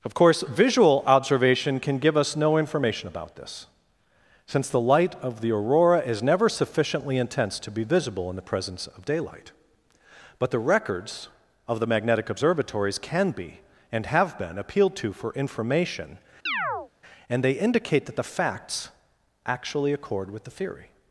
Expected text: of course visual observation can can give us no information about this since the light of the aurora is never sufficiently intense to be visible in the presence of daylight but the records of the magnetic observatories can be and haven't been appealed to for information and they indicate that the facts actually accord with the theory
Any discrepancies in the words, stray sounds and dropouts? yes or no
yes